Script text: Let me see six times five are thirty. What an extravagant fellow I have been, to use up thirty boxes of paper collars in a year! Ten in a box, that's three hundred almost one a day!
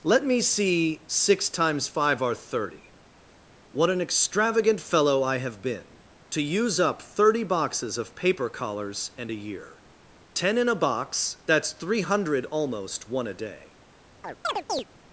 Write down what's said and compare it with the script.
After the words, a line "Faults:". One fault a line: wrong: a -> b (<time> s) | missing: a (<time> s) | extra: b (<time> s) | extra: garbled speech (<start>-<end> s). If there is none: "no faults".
Let me see six times five are thirty. What an extravagant fellow I have been, to use up thirty boxes of paper collars and a year! Ten in a box, that's three hundred almost one a day!
Faults:
wrong: in -> and (9.2 s)